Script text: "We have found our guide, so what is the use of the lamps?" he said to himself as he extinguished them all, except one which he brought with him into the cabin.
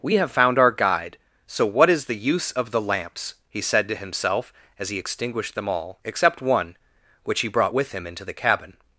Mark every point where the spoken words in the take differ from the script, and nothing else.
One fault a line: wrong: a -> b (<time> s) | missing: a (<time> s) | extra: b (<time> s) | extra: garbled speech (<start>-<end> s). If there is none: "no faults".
no faults